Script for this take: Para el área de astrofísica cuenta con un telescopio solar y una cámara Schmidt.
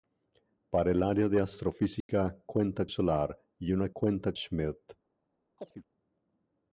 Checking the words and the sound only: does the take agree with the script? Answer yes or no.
no